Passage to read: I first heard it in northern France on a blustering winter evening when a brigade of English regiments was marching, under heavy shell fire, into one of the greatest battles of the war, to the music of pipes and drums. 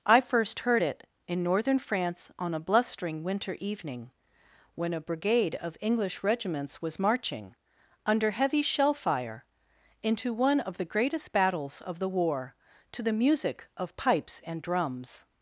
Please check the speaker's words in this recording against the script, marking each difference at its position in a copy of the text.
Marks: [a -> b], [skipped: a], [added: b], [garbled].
I first heard it in northern France on a blustering winter evening when a brigade of English regiments was marching, under heavy shell fire, into one of the greatest battles of the war, to the music of pipes and drums.